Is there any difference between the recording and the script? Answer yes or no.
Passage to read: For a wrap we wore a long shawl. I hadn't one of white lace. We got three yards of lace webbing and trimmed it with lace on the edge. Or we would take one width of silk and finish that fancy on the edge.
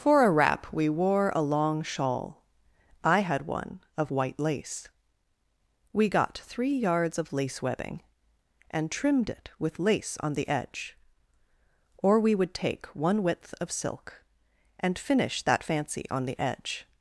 yes